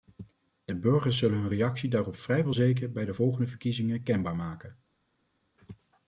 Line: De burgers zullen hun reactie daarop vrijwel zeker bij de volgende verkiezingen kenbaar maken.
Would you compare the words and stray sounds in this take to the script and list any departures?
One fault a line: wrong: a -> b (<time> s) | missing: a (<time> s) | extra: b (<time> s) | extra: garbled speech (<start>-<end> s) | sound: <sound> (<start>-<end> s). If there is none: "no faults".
no faults